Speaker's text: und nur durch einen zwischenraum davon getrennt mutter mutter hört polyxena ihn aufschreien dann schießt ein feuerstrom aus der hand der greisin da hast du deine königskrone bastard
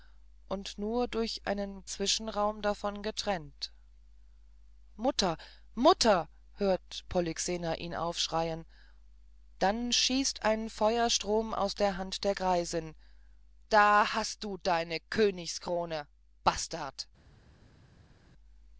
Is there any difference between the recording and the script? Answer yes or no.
no